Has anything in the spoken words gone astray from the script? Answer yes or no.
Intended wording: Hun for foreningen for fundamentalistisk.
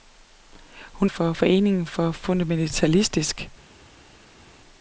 no